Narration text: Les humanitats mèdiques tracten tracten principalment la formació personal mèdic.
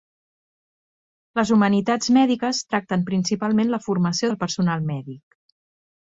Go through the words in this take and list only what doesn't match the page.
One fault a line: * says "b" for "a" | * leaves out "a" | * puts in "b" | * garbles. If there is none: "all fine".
* leaves out "tracten"
* puts in "del"